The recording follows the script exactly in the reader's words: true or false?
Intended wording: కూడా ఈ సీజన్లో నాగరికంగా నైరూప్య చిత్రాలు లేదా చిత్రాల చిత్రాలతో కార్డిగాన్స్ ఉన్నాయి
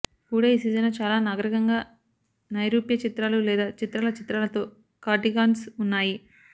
false